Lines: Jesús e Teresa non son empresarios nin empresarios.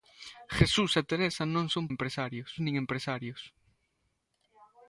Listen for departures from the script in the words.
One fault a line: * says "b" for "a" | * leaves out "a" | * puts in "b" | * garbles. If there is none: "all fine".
all fine